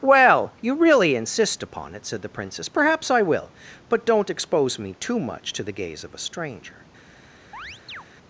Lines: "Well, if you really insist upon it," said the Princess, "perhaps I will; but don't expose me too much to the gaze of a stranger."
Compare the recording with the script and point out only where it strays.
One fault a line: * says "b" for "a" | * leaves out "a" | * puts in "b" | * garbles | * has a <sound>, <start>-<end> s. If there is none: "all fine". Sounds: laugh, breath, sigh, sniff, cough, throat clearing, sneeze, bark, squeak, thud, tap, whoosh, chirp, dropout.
* leaves out "if"
* has a chirp, 7.5-8.0 s